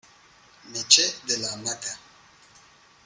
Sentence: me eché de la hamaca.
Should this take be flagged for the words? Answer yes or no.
no